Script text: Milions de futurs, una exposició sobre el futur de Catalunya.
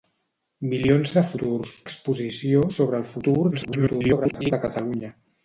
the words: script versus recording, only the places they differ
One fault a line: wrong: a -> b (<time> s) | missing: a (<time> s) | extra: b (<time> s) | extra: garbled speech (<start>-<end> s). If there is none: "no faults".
missing: una (1.7 s)
extra: garbled speech (3.5-4.5 s)